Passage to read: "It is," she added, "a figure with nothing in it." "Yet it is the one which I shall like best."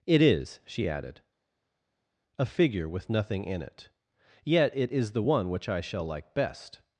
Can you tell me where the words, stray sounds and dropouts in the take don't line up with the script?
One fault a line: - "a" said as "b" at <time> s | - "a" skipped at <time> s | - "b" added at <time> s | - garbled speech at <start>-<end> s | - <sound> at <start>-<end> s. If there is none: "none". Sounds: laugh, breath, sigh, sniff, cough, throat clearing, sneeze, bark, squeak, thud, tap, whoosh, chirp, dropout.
none